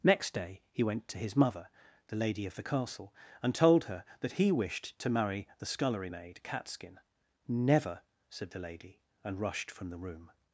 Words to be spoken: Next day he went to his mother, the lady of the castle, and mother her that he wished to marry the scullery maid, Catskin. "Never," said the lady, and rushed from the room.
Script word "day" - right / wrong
right